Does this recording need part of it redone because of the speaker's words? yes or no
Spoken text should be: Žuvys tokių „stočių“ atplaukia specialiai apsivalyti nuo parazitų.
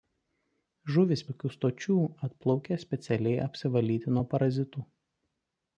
no